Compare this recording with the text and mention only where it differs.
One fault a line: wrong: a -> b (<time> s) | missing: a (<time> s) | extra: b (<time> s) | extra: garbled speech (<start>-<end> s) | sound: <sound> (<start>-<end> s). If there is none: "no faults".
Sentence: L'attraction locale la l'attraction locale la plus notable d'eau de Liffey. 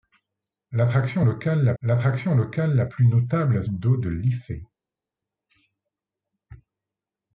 no faults